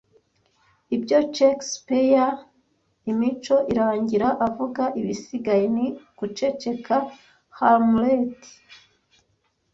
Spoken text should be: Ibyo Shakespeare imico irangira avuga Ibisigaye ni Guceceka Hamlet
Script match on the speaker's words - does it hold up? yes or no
yes